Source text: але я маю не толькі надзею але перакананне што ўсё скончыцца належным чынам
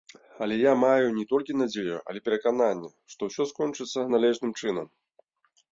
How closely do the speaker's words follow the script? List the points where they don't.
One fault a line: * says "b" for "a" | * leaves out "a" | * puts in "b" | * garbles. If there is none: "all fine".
all fine